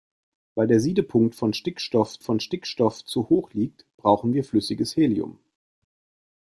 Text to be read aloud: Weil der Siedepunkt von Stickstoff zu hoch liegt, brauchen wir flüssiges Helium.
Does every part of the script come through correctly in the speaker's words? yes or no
no